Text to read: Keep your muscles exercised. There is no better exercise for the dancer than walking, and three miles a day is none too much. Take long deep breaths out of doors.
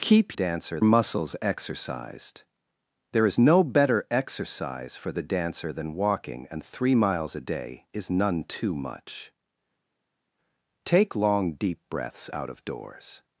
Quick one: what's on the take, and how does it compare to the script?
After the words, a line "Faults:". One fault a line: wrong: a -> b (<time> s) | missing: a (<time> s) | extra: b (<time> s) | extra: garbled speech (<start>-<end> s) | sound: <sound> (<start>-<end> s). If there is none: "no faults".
Keep dancer muscles exercised. There is no better exercise for the dancer than walking, and three miles a day is none too much. Take long deep breaths out of doors.
Faults:
wrong: your -> dancer (0.3 s)